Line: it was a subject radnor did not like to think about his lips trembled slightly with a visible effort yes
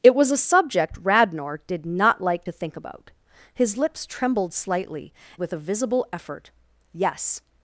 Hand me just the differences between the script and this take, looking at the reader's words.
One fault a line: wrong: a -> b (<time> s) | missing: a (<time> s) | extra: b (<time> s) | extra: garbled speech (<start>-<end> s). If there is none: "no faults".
no faults